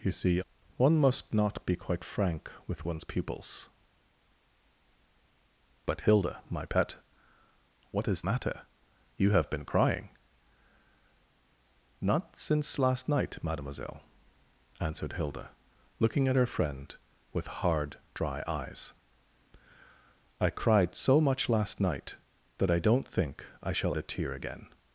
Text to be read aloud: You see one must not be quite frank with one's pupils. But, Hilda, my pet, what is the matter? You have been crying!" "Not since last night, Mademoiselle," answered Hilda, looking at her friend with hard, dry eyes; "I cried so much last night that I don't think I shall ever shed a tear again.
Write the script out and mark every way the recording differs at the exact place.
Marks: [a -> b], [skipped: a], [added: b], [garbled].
You see one must not be quite frank with one's pupils. But, Hilda, my pet, what is [skipped: the] matter? You have been crying!" "Not since last night, Mademoiselle," answered Hilda, looking at her friend with hard, dry eyes; "I cried so much last night that I don't think I shall [skipped: ever shed] a tear again.